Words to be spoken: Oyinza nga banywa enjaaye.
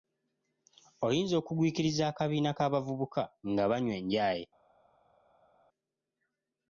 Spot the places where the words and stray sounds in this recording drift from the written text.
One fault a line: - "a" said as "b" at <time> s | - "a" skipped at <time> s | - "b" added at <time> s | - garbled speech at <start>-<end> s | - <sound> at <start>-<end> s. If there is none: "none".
- "okugwikiriza akabiina k'abavubuka" added at 1.4 s